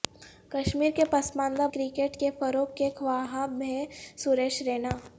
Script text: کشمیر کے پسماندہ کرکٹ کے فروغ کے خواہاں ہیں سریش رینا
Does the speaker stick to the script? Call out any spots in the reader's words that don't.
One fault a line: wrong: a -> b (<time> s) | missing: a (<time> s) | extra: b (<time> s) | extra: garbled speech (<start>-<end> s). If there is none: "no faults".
no faults